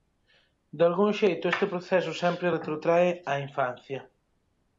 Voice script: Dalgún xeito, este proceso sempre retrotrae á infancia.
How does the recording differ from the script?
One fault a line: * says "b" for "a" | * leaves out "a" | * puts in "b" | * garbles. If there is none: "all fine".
all fine